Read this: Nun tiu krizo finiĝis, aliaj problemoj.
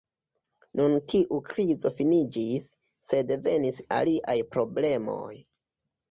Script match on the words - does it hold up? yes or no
no